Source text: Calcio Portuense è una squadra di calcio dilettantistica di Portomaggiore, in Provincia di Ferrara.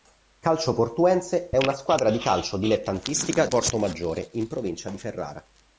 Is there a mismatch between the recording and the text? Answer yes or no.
yes